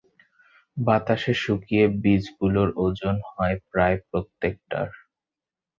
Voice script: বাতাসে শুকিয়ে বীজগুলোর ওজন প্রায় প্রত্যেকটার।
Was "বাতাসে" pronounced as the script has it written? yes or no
yes